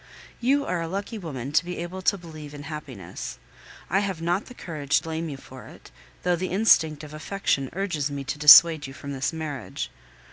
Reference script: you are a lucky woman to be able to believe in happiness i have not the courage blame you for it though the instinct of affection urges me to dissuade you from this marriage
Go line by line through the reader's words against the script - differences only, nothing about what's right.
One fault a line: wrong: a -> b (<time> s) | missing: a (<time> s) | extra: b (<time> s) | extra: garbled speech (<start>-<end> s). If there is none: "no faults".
no faults